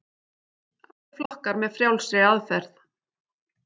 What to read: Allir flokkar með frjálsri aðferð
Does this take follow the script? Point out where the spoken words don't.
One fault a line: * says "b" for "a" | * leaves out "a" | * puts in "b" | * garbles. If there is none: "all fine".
all fine